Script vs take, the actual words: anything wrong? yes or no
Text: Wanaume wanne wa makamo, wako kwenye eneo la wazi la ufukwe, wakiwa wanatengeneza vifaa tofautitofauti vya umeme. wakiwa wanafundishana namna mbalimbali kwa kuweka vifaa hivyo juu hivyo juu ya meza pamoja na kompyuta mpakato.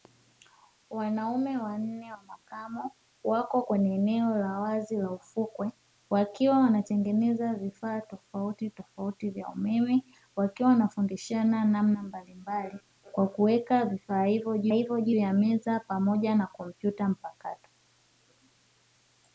no